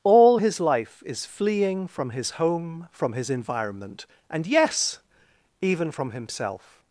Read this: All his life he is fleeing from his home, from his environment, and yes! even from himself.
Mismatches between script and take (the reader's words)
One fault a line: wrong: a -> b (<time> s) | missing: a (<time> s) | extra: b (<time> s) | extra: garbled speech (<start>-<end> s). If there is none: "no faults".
missing: he (1.0 s)